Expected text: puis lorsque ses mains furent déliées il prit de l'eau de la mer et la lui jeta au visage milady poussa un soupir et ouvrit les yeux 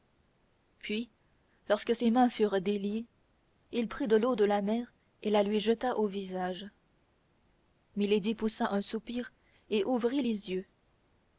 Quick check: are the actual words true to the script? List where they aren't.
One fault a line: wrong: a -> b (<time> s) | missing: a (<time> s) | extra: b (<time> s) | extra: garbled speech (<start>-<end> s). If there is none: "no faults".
no faults